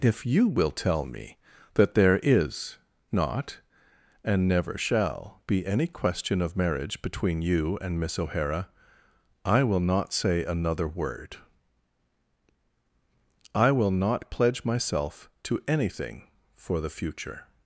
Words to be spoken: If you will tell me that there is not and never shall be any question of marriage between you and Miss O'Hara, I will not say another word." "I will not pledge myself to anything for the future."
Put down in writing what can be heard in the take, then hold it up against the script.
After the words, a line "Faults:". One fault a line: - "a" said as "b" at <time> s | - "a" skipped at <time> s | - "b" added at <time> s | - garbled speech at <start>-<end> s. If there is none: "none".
If you will tell me that there is not and never shall be any question of marriage between you and Miss O'Hara, I will not say another word." "I will not pledge myself to anything for the future."
Faults:
none